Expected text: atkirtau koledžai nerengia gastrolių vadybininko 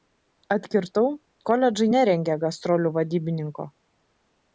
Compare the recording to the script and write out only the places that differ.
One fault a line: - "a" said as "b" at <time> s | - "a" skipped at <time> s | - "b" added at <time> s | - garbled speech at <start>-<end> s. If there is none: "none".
none